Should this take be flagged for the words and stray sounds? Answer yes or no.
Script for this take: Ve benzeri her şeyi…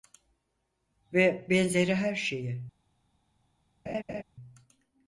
yes